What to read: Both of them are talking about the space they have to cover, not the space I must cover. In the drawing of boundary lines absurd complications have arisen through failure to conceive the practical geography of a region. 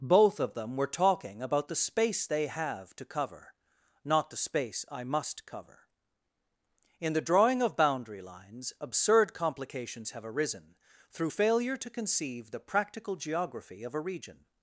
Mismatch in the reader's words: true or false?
true